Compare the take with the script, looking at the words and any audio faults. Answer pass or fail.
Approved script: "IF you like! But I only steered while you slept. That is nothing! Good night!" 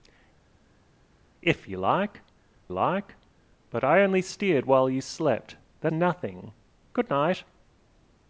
fail